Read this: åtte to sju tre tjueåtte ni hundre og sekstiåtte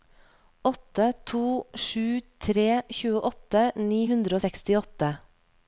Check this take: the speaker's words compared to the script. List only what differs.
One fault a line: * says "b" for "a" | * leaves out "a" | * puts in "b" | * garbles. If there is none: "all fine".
all fine